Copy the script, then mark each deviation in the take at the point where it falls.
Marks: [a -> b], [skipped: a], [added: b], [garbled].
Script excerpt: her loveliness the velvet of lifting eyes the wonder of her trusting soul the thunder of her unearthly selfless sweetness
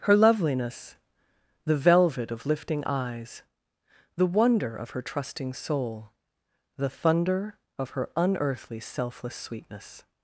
her loveliness the velvet of lifting eyes the wonder of her trusting soul the thunder of her unearthly selfless sweetness